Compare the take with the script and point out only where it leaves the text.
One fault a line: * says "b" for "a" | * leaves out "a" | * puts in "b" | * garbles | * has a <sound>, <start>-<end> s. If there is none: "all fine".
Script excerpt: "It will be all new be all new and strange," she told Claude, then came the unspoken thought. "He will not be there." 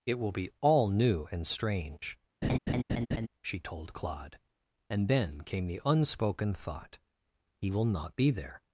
* leaves out "be all new"
* has a laugh, 2.4-3.3 s
* puts in "and"